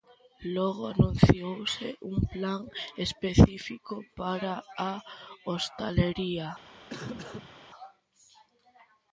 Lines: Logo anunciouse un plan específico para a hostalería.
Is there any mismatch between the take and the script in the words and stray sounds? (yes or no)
yes